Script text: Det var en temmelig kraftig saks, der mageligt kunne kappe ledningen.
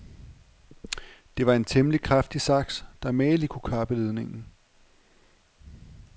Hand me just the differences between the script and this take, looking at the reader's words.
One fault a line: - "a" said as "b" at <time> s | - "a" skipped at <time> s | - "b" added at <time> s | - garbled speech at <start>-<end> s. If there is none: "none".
none